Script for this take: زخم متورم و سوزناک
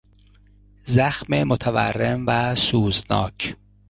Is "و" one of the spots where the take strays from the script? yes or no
no